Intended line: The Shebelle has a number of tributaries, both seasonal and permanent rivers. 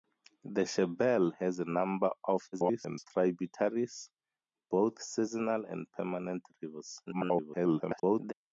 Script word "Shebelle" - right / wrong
right